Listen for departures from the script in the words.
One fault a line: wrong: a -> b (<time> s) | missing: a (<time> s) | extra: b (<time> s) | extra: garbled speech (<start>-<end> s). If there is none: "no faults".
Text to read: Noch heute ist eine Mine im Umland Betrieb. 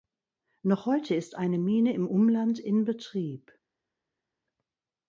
extra: in (2.6 s)